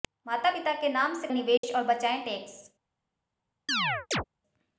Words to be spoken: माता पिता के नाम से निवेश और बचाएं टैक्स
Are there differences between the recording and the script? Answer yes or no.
no